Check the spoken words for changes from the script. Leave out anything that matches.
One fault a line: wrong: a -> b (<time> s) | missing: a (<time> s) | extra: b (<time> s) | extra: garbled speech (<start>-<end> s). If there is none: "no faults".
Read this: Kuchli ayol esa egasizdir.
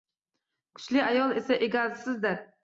no faults